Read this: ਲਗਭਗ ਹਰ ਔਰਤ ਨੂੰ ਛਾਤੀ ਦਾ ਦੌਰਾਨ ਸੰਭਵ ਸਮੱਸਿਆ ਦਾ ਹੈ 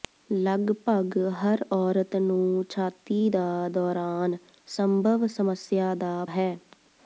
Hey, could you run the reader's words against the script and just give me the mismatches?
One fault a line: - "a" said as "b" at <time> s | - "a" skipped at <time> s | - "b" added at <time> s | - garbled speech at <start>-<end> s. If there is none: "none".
none